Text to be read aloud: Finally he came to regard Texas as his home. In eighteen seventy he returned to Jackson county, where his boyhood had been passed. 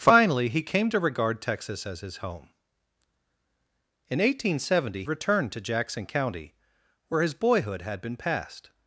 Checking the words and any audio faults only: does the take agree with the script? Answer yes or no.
no